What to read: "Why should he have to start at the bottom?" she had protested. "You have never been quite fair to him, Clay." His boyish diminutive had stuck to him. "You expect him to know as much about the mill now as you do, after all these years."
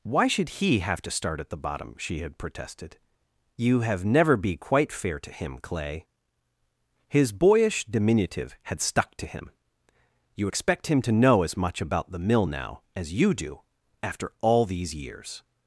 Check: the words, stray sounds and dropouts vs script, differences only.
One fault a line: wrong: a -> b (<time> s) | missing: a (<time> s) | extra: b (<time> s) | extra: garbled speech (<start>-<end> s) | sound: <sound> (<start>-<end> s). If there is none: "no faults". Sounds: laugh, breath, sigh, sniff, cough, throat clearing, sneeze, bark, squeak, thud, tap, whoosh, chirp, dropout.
wrong: been -> be (4.3 s)